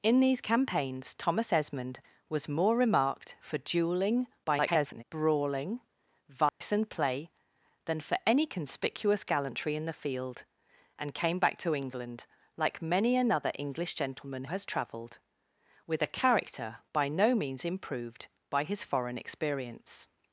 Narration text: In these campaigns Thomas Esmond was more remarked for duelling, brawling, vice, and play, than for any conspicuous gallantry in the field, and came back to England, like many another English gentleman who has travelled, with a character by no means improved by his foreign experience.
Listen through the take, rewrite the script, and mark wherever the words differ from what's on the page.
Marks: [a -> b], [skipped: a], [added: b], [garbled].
In these campaigns Thomas Esmond was more remarked for duelling, [garbled] brawling, vice, and play, than for any conspicuous gallantry in the field, and came back to England, like many another English gentleman [skipped: who] has travelled, with a character by no means improved by his foreign experience.